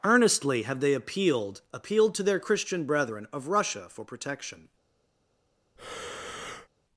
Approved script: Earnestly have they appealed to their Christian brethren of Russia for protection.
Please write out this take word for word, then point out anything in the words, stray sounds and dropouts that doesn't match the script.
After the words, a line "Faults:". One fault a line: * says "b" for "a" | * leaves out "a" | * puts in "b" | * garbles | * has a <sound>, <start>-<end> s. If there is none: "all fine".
Earnestly have they appealed appealed to their Christian brethren of Russia for protection.
Faults:
* puts in "appealed"
* has a breath, 5.8-6.7 s